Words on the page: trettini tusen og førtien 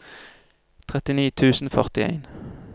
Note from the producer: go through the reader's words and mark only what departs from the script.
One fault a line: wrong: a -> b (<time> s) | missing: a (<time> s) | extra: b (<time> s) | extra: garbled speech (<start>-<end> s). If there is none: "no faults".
no faults